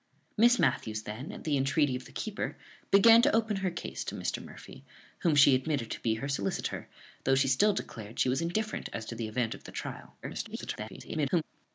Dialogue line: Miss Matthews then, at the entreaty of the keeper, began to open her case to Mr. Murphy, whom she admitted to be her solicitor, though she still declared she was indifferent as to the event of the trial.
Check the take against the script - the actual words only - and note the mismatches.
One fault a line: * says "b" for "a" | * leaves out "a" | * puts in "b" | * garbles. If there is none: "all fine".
* garbles